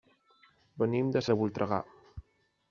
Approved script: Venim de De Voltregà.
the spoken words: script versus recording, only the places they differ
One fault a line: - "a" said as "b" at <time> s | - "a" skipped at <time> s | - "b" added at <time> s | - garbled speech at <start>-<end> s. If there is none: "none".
none